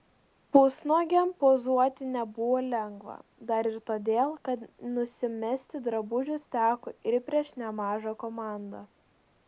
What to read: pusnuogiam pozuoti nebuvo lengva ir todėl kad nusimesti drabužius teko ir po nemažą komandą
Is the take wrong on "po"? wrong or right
wrong